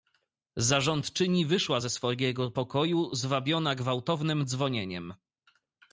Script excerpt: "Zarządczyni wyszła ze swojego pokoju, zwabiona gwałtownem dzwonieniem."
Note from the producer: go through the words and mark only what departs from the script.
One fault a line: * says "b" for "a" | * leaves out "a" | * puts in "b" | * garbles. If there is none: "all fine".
all fine